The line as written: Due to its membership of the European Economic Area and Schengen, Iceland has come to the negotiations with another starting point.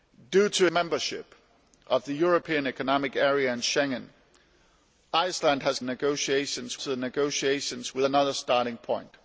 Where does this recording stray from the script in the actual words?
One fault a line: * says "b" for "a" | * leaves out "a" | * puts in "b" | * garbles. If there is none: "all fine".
* leaves out "its"
* says "negotiations" for "come"